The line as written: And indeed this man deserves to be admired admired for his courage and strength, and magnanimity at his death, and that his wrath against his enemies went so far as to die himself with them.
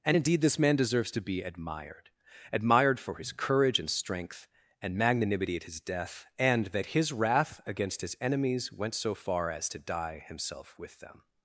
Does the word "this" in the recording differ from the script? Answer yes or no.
no